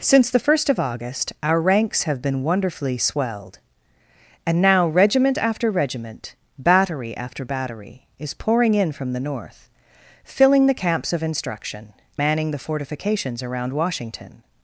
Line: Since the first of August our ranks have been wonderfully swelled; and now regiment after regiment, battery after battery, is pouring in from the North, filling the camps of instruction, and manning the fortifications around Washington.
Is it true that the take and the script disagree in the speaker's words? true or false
true